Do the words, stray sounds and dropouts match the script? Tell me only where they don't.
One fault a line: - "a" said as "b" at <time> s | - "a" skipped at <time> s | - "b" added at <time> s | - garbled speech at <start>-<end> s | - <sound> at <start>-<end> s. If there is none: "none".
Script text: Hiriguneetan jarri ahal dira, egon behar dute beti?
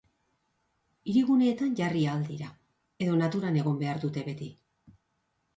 - "edo naturan" added at 3.1 s